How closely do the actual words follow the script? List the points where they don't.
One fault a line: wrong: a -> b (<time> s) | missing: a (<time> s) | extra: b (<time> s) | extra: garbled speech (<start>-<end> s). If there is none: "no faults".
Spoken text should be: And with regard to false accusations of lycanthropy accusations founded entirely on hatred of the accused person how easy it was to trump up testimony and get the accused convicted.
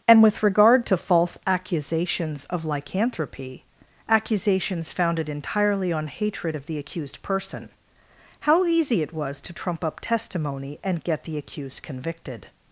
no faults